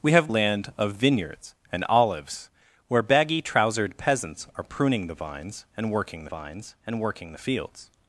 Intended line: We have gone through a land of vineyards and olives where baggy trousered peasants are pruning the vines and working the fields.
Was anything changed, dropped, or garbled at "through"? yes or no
yes